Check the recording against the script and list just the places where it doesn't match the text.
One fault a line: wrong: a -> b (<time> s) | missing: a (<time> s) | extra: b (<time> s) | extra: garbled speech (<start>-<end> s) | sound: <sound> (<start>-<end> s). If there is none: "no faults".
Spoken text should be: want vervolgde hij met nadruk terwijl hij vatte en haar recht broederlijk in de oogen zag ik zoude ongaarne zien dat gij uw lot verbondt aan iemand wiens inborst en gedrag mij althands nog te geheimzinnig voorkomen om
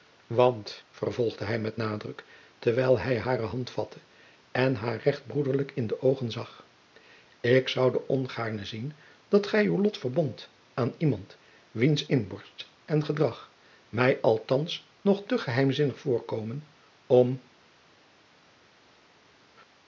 extra: hare hand (3.2 s)